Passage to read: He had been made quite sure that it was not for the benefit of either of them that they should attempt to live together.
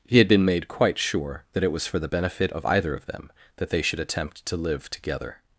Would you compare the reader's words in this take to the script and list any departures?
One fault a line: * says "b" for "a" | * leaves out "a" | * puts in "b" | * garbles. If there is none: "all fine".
* leaves out "not"